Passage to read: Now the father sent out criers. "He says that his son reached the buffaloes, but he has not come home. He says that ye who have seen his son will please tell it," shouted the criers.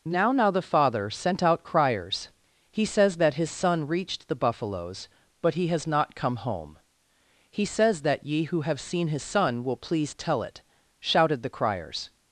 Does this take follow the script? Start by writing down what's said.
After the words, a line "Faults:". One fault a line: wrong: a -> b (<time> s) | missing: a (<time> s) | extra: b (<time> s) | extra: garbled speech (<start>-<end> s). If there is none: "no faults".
Now now the father sent out criers. "He says that his son reached the buffaloes, but he has not come home. He says that ye who have seen his son will please tell it," shouted the criers.
Faults:
extra: now (0.3 s)